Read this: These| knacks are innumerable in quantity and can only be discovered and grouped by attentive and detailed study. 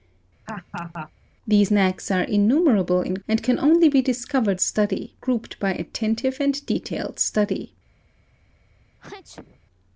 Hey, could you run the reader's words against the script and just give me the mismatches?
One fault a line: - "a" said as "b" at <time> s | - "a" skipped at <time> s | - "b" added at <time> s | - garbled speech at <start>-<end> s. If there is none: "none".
- "quantity" skipped at 3.2 s
- "and" said as "study" at 4.6 s